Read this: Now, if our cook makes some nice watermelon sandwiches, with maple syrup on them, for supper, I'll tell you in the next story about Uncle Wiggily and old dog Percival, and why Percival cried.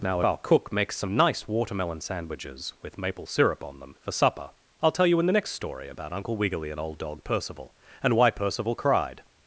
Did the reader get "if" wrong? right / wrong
wrong